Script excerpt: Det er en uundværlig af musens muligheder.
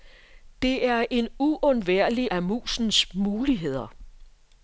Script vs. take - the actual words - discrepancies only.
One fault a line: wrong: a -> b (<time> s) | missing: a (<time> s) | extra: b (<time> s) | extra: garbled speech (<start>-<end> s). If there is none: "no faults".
no faults